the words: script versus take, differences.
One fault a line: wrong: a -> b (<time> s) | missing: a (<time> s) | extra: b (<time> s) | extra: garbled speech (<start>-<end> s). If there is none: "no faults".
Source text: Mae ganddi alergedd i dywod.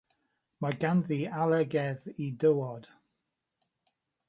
no faults